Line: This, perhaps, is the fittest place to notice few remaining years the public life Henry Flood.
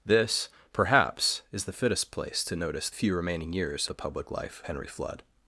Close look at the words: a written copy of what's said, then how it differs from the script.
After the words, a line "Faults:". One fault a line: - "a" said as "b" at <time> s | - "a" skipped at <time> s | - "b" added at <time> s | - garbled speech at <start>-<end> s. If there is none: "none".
This, perhaps, is the fittest place to notice few remaining years the public life Henry Flood.
Faults:
none